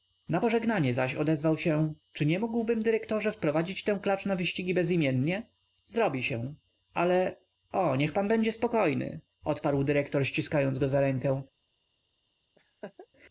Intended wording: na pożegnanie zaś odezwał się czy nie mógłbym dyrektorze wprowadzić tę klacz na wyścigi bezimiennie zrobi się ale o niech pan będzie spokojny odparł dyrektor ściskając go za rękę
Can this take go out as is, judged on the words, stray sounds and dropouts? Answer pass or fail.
fail